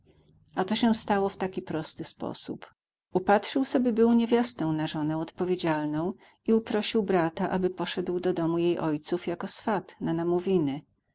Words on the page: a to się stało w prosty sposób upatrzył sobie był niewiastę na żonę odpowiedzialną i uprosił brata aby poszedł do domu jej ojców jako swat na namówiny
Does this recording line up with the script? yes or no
no